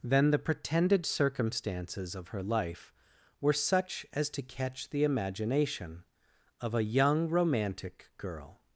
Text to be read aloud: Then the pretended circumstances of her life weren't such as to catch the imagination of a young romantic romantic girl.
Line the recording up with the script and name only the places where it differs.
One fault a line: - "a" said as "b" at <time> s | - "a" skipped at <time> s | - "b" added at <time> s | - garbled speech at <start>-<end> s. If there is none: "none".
- "weren't" said as "were" at 3.4 s
- "romantic" skipped at 8.1 s